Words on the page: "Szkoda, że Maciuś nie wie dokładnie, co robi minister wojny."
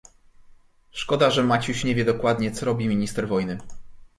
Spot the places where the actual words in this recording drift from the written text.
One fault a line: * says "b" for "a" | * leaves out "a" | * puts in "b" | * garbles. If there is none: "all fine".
all fine